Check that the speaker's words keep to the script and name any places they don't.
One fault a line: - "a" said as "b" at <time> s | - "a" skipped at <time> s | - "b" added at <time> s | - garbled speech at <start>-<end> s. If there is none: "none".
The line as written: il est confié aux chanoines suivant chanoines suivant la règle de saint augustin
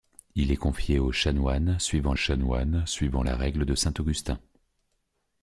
none